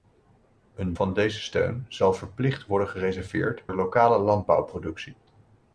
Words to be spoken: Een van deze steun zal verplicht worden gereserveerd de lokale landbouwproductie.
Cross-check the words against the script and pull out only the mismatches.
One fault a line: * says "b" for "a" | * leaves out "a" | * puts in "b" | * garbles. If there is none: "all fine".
all fine